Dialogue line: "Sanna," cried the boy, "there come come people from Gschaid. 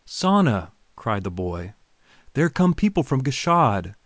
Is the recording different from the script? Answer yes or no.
yes